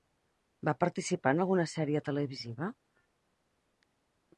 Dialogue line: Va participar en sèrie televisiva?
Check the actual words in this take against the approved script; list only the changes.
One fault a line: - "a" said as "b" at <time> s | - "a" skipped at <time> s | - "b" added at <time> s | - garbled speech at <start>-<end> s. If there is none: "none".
- "alguna" added at 1.4 s